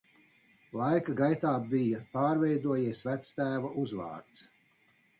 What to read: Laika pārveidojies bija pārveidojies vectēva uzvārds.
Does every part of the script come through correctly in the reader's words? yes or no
no